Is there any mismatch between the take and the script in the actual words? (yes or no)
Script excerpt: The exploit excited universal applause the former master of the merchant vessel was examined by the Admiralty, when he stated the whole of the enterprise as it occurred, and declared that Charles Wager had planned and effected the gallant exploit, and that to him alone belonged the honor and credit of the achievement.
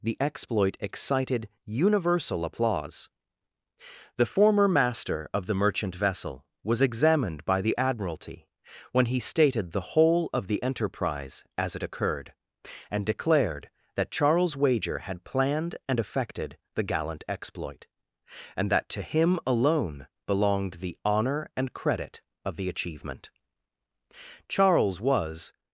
yes